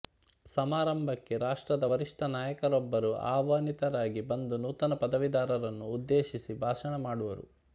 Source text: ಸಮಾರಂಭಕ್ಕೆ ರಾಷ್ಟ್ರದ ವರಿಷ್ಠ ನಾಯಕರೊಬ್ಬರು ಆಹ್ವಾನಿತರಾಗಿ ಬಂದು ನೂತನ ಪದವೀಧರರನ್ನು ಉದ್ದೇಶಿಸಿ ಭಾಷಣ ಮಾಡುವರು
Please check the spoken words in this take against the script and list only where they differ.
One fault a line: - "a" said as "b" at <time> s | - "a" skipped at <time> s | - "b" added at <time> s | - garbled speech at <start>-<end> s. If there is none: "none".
none